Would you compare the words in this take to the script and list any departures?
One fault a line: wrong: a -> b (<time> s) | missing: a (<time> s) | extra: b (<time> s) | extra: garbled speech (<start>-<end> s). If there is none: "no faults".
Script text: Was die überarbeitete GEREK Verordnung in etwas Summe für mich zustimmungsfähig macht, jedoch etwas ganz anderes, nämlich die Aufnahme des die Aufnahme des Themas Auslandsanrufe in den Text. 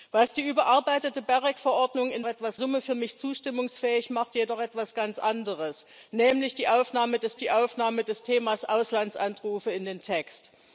no faults